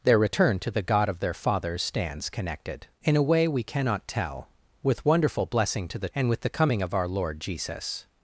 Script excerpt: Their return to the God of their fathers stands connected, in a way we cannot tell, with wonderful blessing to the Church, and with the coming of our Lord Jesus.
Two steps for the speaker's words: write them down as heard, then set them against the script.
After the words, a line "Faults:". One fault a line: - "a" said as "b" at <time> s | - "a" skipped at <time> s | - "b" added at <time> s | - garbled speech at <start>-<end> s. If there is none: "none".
Their return to the God of their fathers stands connected, in a way we cannot tell, with wonderful blessing to the And with the coming of our Lord Jesus.
Faults:
- "Church" skipped at 6.1 s